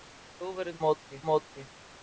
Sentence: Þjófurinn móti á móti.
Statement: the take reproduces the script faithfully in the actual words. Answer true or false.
true